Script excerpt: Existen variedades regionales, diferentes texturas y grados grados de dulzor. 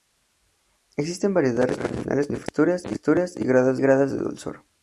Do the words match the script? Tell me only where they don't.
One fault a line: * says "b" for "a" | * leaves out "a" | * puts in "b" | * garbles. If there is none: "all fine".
all fine